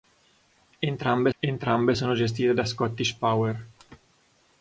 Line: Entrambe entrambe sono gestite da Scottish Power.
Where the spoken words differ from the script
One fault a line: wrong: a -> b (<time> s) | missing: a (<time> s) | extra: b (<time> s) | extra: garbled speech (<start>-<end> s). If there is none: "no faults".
no faults